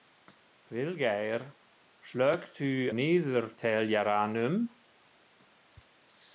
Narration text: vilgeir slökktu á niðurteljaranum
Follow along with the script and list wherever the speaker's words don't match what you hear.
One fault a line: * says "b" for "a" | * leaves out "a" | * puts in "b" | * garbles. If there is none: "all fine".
* leaves out "á"